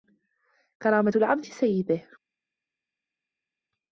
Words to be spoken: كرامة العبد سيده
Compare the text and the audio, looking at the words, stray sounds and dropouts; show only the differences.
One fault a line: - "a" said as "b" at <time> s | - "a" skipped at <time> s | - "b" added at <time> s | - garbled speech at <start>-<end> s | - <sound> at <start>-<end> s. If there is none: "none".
none